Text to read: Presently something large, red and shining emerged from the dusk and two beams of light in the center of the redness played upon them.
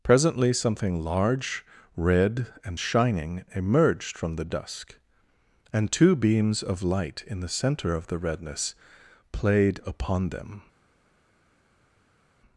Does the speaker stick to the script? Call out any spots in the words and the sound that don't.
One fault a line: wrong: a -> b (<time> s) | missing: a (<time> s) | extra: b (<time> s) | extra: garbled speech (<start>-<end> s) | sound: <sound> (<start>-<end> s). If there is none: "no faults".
no faults